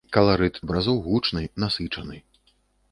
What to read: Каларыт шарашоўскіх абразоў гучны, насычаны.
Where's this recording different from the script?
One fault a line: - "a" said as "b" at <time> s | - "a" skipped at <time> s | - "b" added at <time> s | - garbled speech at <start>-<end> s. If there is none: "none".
- "шарашоўскіх" skipped at 0.6 s